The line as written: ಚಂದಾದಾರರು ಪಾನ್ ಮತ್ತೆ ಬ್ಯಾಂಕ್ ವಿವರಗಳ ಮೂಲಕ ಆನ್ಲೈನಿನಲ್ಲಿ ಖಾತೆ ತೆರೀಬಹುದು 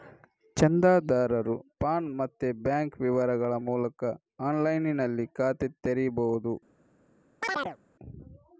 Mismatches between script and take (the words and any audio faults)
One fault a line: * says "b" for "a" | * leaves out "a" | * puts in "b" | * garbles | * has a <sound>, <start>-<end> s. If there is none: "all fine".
* has a chirp, 7.4-7.8 s